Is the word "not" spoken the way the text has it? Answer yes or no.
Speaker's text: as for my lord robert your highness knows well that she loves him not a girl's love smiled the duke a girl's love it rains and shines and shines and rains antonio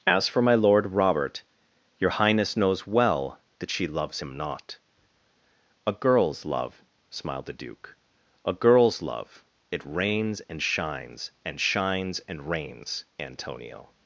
yes